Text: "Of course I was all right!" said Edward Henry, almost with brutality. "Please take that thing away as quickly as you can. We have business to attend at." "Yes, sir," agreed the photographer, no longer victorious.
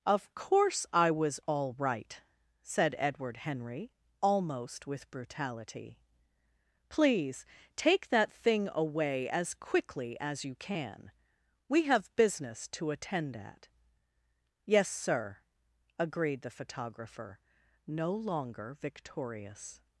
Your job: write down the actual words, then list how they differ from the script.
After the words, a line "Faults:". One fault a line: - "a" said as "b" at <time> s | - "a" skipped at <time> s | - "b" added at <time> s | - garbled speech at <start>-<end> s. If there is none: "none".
"Of course I was all right!" said Edward Henry, almost with brutality. "Please take that thing away as quickly as you can. We have business to attend at." "Yes, sir," agreed the photographer, no longer victorious.
Faults:
none